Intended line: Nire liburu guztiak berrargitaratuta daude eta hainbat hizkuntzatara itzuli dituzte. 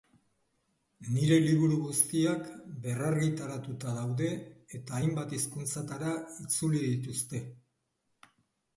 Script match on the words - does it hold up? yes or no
yes